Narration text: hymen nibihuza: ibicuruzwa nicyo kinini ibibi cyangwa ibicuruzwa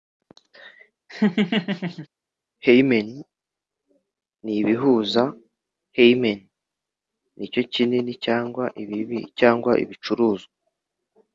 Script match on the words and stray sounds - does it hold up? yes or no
no